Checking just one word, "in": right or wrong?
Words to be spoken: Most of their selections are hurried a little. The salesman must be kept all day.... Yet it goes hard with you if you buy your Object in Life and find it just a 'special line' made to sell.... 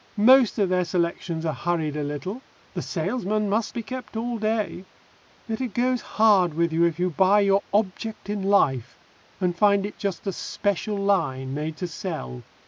right